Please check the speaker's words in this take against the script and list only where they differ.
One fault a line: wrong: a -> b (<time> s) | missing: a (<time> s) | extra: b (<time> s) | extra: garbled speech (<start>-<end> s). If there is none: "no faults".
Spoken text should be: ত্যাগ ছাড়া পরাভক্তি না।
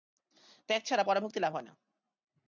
extra: লাভ হয় (1.4 s)